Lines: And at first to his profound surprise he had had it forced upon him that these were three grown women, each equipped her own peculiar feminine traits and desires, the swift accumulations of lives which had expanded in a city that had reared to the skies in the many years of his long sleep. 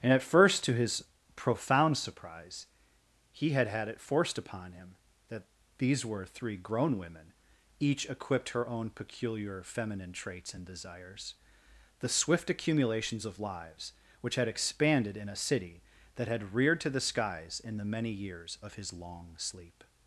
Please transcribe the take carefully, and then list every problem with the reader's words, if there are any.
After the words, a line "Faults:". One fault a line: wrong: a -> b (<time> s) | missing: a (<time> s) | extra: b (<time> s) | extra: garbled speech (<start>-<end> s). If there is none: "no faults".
And at first to his profound surprise he had had it forced upon him that these were three grown women, each equipped her own peculiar feminine traits and desires, the swift accumulations of lives which had expanded in a city that had reared to the skies in the many years of his long sleep.
Faults:
no faults